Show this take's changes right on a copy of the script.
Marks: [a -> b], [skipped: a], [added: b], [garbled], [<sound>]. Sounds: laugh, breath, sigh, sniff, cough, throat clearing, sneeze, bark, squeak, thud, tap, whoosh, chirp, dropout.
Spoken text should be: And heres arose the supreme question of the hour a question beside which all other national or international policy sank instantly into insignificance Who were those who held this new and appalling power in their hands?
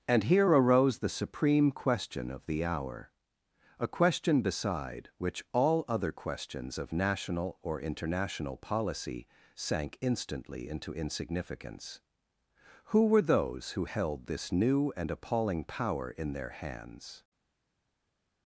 And [heres -> here] arose the supreme question of the hour a question beside which all other [added: questions of] national or international policy sank instantly into insignificance Who were those who held this new and appalling power in their hands?